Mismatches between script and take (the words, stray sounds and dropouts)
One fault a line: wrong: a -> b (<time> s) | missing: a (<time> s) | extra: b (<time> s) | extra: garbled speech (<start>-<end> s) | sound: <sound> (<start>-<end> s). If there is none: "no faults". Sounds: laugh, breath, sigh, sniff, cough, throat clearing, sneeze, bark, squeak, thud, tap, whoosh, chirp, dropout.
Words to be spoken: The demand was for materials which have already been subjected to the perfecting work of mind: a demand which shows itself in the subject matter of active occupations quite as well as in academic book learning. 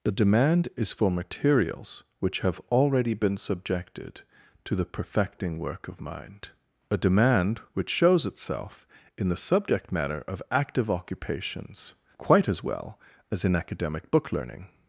wrong: was -> is (0.8 s)